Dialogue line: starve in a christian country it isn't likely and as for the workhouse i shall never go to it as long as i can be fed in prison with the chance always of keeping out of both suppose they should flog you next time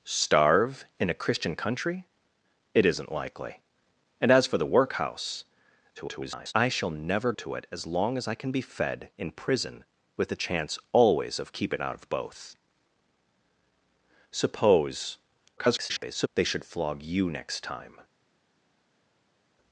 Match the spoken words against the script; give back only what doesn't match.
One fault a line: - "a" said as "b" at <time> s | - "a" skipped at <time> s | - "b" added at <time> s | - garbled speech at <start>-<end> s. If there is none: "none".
- garbled speech at 6.0-6.5 s
- "go" skipped at 7.3 s
- garbled speech at 15.6-16.3 s